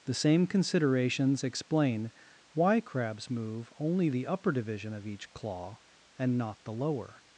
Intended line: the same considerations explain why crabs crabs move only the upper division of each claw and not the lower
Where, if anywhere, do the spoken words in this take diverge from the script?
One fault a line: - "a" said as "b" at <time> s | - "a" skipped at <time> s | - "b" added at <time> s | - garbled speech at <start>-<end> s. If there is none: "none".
- "crabs" skipped at 3.3 s